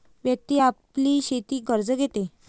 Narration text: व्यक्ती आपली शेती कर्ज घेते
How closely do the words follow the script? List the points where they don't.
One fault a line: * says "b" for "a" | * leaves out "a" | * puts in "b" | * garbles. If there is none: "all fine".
all fine